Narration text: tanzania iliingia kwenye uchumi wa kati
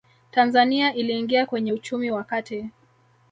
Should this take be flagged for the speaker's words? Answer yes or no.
no